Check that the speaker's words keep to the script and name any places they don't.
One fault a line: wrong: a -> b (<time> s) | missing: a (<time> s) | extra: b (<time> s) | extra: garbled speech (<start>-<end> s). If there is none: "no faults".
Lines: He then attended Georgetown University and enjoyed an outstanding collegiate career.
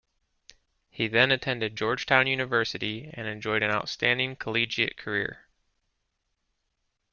no faults